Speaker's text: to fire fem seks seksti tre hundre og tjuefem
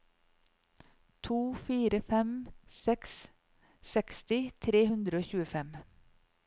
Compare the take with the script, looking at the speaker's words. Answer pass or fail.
pass